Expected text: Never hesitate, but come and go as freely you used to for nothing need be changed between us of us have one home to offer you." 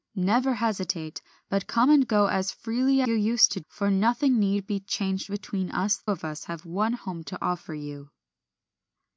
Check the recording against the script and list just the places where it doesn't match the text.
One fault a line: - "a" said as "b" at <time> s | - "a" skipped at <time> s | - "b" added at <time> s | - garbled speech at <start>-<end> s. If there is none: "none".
none